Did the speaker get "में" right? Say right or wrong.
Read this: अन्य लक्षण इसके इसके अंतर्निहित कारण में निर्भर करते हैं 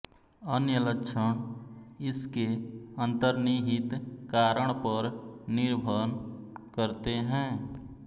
wrong